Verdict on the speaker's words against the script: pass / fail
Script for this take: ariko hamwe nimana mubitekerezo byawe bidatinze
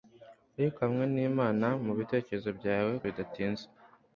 pass